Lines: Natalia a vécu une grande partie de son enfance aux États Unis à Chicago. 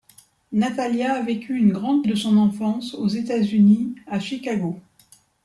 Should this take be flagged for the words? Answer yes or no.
yes